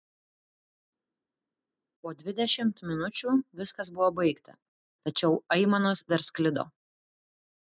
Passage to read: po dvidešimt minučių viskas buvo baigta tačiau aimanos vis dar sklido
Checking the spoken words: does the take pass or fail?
fail